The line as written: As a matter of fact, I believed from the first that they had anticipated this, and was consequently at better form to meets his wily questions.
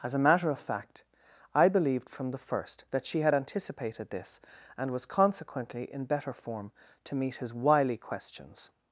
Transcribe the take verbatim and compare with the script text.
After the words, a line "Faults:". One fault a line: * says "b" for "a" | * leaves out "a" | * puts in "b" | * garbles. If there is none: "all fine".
As a matter of fact, I believed from the first that she had anticipated this, and was consequently in better form to meet his wily questions.
Faults:
* says "she" for "they"
* says "in" for "at"
* says "meet" for "meets"